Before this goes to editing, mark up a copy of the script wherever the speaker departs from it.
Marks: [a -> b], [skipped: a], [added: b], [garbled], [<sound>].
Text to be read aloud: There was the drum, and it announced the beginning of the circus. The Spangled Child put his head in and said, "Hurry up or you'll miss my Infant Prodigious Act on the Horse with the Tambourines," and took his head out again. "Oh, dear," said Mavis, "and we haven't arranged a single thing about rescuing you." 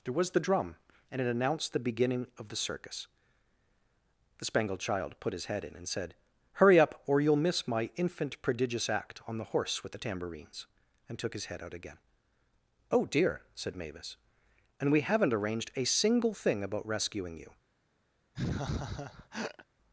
There was the drum, and it announced the beginning of the circus. The Spangled Child put his head in and said, "Hurry up or you'll miss my Infant Prodigious Act on the Horse with the Tambourines," and took his head out again. "Oh, dear," said Mavis, "and we haven't arranged a single thing about rescuing you." [laugh]